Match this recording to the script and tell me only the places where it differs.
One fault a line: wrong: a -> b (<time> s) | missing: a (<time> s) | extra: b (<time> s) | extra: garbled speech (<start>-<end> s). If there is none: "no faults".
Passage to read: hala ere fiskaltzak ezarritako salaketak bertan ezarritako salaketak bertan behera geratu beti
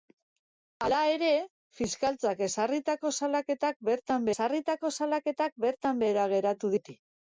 no faults